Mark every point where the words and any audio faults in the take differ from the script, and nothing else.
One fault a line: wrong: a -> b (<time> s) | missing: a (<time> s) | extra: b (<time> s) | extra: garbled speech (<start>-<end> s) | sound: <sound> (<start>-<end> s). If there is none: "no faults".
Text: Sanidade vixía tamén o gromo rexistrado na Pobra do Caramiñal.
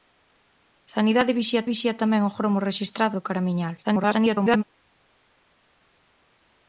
extra: vixía (1.7 s)
missing: na Pobra (3.2 s)
extra: garbled speech (3.8-4.6 s)